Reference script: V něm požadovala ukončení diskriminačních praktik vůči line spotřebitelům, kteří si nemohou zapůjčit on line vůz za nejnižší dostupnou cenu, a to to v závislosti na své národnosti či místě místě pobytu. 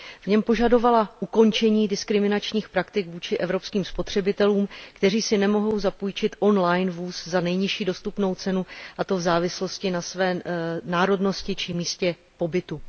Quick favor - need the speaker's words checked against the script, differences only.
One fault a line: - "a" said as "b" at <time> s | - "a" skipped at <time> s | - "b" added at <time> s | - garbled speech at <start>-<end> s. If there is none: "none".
- "line" said as "evropským" at 3.4 s
- "to" skipped at 9.2 s
- "místě" skipped at 12.1 s